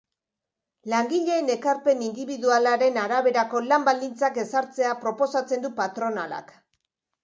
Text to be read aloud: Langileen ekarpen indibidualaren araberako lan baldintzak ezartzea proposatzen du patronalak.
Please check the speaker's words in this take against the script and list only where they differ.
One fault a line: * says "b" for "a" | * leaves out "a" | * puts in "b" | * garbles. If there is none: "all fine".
all fine